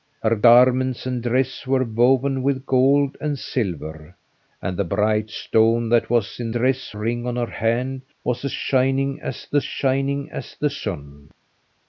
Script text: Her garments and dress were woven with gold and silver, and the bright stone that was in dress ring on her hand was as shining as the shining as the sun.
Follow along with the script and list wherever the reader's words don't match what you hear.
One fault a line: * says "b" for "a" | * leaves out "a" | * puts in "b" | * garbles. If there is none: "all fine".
all fine